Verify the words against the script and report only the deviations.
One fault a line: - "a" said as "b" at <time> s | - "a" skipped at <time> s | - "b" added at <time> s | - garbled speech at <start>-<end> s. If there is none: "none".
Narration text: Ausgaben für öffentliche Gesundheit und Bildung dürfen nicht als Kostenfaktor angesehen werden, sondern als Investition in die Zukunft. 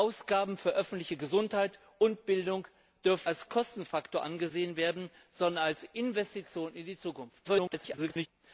- "nicht" skipped at 3.3 s
- garbled speech at 7.4-8.3 s